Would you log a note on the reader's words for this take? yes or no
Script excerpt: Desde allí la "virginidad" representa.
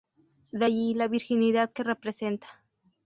yes